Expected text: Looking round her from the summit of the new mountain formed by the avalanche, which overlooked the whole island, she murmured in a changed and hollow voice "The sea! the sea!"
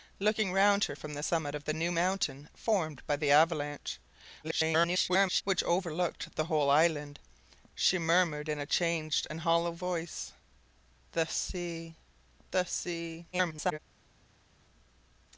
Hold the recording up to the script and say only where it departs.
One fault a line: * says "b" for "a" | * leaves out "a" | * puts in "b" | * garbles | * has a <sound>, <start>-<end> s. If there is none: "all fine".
* garbles
* garbles